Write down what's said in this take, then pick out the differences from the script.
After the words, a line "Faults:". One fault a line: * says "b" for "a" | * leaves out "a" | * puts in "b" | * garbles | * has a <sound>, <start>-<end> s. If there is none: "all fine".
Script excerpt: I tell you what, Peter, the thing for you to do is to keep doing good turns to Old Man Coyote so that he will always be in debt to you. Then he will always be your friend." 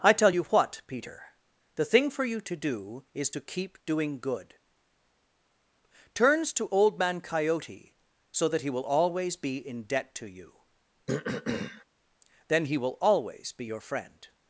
I tell you what, Peter, the thing for you to do is to keep doing good turns to Old Man Coyote so that he will always be in debt to you. Then he will always be your friend."
Faults:
* has a throat clearing, 11.1-11.8 s